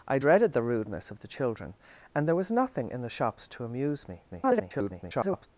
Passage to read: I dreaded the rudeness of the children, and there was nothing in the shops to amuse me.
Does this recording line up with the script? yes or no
no